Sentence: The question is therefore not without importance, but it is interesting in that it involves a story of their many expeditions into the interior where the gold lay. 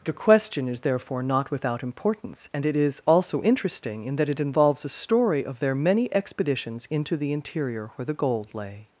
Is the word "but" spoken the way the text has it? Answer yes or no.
no